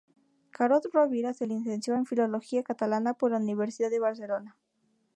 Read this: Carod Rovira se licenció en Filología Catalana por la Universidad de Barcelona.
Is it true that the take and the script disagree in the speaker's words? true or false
false